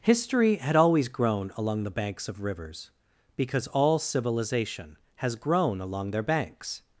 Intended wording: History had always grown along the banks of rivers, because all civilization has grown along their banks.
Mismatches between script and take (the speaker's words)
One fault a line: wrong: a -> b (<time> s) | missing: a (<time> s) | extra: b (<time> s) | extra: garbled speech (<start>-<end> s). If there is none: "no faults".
no faults